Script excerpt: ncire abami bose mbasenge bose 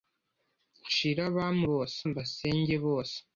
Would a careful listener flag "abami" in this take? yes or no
no